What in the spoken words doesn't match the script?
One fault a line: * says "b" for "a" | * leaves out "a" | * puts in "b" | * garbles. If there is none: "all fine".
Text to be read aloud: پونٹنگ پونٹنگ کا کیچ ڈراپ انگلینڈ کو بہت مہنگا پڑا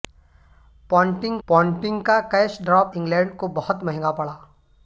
all fine